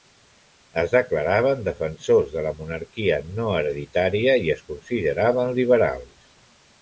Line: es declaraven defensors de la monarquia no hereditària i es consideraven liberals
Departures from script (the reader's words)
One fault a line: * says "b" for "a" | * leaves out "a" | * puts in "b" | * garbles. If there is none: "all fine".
all fine